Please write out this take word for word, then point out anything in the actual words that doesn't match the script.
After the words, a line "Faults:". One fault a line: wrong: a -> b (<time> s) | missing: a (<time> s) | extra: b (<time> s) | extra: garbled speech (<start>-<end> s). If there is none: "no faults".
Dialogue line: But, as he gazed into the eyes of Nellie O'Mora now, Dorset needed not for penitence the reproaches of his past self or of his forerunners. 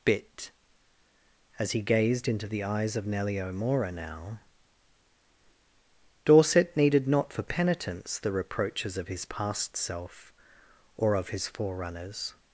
Bit, as he gazed into the eyes of Nellie O'Mora now, Dorset needed not for penitence the reproaches of his past self or of his forerunners.
Faults:
wrong: But -> Bit (0.0 s)